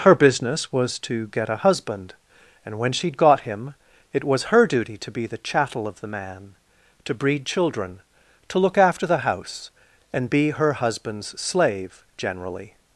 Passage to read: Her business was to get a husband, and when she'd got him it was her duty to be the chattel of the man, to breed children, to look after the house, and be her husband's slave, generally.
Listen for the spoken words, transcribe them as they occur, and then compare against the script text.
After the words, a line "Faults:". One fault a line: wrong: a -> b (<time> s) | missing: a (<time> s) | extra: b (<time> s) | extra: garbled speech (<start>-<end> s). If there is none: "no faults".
Her business was to get a husband, and when she'd got him it was her duty to be the chattel of the man, to breed children, to look after the house, and be her husband's slave, generally.
Faults:
no faults